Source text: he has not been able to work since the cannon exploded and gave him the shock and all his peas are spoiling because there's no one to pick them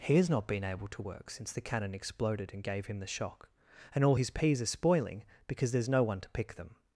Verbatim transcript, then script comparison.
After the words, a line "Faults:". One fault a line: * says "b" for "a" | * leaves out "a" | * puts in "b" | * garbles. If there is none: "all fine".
he has not been able to work since the cannon exploded and gave him the shock and all his peas are spoiling because there's no one to pick them
Faults:
all fine